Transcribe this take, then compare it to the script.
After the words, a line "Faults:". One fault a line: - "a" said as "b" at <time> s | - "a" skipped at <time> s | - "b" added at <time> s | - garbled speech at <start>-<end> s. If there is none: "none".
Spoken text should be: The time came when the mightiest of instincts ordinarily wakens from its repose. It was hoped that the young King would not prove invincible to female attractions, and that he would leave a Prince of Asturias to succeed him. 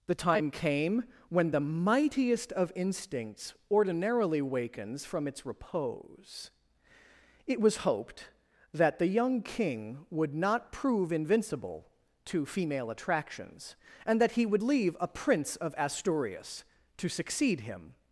The time came when the mightiest of instincts ordinarily wakens from its repose. It was hoped that the young King would not prove invincible to female attractions, and that he would leave a Prince of Asturias to succeed him.
Faults:
none